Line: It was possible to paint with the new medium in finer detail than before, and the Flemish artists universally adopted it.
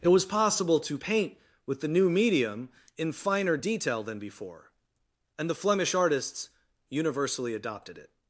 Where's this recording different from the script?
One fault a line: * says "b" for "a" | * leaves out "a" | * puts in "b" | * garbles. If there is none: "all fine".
all fine